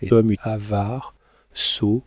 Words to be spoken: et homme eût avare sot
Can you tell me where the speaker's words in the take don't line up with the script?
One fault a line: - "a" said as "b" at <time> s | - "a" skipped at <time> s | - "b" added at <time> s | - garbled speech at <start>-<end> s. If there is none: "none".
none